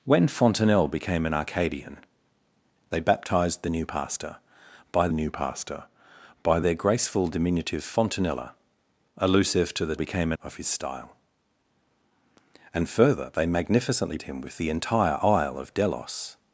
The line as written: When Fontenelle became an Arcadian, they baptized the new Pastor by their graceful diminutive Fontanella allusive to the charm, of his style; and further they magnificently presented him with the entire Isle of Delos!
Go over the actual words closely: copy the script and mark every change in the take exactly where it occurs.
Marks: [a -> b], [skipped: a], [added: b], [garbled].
When Fontenelle became an Arcadian, they baptized the new Pastor by [added: new Pastor by] their graceful diminutive Fontanella allusive to the [charm, -> became] of his style; and further they magnificently [skipped: presented] him with the entire Isle of Delos!